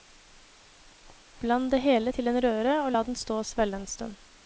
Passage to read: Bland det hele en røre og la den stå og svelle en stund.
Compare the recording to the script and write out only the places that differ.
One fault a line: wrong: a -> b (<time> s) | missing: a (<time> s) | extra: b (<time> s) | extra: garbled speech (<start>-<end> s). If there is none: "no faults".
extra: til (2.1 s)